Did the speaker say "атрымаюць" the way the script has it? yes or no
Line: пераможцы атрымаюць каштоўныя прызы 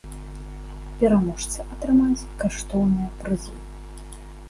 yes